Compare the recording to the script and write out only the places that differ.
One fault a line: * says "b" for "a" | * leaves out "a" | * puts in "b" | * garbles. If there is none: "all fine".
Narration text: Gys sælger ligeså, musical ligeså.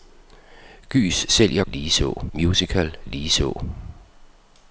all fine